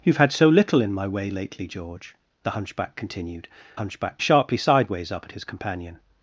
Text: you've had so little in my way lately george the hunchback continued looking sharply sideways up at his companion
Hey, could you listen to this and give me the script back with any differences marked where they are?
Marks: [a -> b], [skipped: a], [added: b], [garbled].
you've had so little in my way lately george the hunchback continued [looking -> hunchback] sharply sideways up at his companion